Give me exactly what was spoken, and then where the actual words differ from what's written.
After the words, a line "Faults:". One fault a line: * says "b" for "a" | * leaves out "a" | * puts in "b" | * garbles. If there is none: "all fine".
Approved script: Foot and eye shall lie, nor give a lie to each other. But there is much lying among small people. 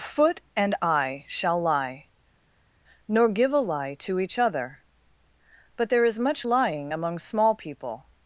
Foot and eye shall lie, nor give a lie to each other. But there is much lying among small people.
Faults:
all fine